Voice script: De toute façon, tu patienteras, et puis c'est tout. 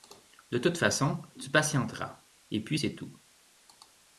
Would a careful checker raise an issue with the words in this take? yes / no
no